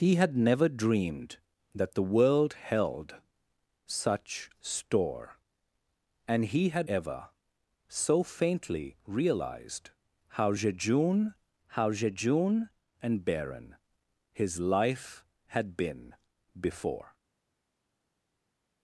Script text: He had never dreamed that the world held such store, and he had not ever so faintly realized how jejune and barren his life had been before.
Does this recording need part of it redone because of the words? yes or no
yes